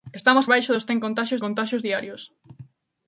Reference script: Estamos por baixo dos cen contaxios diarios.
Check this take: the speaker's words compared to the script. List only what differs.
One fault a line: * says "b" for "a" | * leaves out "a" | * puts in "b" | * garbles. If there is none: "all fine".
* leaves out "por"
* puts in "contaxios"